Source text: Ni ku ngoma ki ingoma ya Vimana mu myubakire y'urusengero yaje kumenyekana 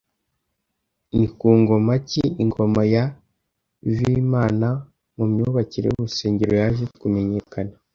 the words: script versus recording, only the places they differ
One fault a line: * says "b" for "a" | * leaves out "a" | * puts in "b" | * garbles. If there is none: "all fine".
all fine